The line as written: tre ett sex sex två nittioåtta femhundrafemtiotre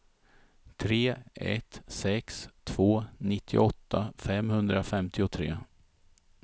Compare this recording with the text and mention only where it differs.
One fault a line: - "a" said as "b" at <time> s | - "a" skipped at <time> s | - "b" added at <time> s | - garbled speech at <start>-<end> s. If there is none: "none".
- "sex" skipped at 2.5 s